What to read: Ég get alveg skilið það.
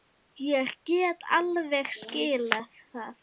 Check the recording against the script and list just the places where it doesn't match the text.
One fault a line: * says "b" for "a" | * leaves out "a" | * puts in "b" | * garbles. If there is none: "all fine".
all fine